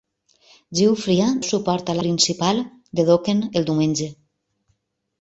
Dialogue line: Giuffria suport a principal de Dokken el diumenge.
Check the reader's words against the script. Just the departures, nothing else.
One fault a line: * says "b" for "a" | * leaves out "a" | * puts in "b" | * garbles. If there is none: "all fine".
all fine